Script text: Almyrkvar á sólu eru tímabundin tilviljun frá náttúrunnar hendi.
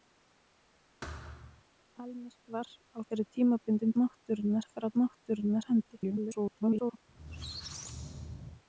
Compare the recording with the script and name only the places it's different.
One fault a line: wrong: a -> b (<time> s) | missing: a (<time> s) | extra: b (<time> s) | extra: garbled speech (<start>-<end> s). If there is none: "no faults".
missing: sólu (3.0 s)
wrong: tilviljun -> náttúrunnar (4.0 s)
extra: garbled speech (6.0-7.0 s)